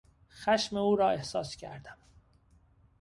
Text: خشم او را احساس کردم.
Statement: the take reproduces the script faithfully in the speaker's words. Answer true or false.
true